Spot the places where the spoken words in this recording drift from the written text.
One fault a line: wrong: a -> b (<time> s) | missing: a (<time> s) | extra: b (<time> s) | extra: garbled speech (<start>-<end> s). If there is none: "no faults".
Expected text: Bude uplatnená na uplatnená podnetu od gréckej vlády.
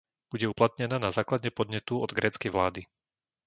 wrong: uplatnená -> základe (1.1 s)